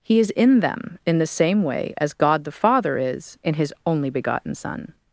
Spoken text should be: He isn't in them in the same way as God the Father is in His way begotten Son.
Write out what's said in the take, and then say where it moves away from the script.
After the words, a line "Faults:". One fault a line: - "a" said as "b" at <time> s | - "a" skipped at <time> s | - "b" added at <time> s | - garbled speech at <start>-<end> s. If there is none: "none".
He is in them in the same way as God the Father is in His only begotten Son.
Faults:
- "isn't" said as "is" at 0.2 s
- "way" said as "only" at 3.9 s